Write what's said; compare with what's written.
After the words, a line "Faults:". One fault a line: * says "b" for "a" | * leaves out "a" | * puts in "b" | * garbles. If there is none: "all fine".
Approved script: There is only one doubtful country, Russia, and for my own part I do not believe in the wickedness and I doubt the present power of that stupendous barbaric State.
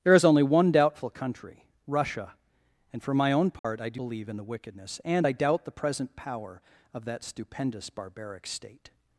There is only one doubtful country, Russia, and for my own part I do believe in the wickedness and I doubt the present power of that stupendous barbaric State.
Faults:
* leaves out "not"